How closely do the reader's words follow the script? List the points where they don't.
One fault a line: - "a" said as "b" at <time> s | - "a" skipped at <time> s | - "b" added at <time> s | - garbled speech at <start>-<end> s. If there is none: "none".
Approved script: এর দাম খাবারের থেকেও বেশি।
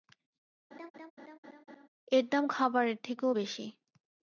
none